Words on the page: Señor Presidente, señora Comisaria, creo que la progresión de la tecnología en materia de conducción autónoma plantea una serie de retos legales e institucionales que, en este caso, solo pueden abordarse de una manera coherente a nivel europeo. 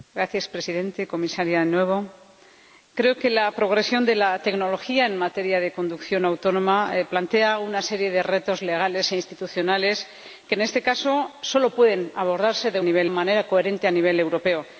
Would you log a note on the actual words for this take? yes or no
yes